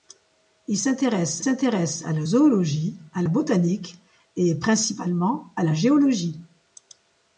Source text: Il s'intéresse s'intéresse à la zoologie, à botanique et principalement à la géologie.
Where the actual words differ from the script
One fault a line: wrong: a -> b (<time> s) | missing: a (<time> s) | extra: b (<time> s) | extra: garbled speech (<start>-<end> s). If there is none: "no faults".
no faults